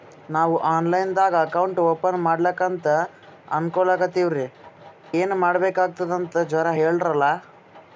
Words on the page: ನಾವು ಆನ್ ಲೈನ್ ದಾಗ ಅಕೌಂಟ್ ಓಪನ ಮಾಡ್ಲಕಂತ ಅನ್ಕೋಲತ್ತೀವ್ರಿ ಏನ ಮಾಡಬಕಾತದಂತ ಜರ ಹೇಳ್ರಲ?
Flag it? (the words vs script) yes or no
no